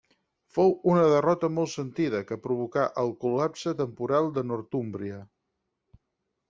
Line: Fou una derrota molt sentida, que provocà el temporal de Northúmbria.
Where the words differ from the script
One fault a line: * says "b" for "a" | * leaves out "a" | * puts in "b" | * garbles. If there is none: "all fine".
* puts in "col·lapse"